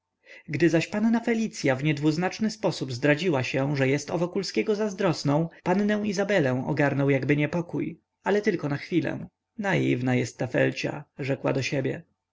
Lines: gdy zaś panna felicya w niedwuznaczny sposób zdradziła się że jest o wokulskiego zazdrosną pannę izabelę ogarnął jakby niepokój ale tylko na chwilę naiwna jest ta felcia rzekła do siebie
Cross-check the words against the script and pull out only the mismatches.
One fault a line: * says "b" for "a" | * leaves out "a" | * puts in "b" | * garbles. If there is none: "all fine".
all fine